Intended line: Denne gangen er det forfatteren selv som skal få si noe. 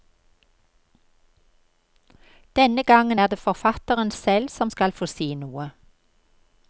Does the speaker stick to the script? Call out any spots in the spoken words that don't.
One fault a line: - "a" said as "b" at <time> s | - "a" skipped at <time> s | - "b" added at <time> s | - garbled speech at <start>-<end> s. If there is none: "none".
none